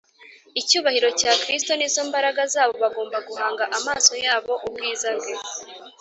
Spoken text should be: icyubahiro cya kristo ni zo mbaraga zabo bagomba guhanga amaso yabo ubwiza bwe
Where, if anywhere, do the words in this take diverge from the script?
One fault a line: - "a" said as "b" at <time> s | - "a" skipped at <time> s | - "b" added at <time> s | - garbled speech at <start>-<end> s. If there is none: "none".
none